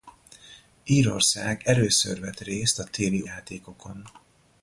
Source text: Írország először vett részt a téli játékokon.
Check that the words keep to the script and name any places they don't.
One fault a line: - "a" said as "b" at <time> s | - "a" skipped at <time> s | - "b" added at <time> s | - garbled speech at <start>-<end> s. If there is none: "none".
none